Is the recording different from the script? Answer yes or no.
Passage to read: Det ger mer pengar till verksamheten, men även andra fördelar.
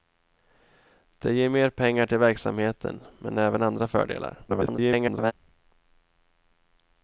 yes